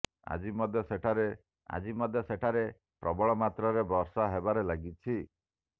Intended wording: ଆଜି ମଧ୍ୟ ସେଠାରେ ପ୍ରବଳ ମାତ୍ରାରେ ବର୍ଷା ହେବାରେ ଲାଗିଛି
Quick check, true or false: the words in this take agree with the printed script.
false